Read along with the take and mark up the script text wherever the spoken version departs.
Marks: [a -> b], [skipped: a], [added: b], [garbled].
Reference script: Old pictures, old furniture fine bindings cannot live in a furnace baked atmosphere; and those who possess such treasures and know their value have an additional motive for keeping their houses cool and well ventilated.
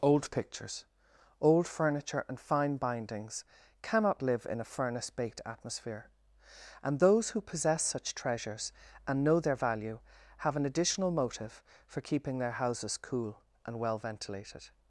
Old pictures, old furniture [added: and] fine bindings cannot live in a furnace baked atmosphere; and those who possess such treasures and know their value have an additional motive for keeping their houses cool and well ventilated.